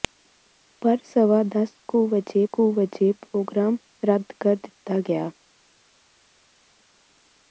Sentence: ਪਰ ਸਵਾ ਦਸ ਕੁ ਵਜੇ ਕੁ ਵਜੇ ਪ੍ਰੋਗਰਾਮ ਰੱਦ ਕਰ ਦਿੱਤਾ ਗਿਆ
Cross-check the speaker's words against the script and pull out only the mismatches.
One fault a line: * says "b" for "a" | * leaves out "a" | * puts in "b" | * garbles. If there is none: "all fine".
all fine